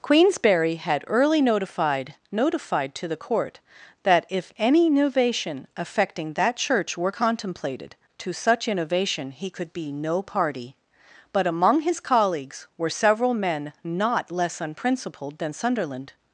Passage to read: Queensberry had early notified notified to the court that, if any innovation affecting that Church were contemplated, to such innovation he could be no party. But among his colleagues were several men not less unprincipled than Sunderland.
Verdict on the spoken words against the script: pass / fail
pass